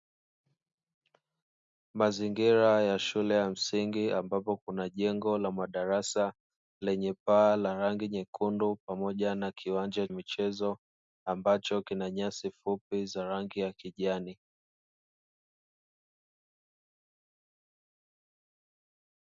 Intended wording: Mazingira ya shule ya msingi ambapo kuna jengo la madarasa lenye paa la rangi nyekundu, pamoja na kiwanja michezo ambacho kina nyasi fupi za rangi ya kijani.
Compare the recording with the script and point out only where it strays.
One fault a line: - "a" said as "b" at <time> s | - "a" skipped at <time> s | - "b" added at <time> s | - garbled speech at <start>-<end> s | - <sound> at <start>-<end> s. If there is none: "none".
none